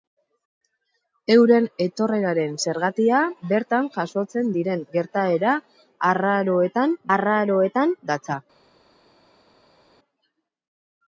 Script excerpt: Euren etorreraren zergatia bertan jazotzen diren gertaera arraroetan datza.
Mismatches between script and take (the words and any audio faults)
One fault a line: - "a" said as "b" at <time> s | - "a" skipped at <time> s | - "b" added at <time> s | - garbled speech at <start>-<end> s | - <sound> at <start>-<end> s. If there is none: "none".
- "arraroetan" added at 7.2 s